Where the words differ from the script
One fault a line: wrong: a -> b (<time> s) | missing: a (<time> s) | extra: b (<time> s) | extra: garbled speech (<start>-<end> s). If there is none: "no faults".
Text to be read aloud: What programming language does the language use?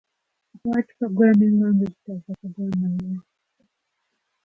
wrong: language -> programmer (2.4 s)